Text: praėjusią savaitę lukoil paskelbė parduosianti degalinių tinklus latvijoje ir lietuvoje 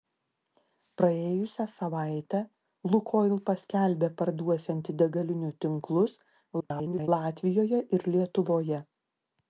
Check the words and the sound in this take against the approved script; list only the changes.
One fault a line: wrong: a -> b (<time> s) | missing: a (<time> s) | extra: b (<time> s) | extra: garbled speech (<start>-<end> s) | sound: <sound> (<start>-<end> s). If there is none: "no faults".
extra: garbled speech (6.6-7.1 s)